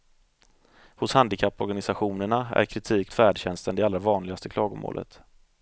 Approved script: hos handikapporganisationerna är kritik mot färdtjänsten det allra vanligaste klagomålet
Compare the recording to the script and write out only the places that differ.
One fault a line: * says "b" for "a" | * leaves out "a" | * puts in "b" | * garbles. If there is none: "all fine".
* leaves out "mot"